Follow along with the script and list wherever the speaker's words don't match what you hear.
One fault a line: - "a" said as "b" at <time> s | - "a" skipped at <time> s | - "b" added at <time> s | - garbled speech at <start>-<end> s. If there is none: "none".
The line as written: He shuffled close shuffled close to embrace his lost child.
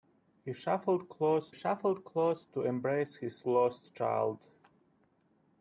none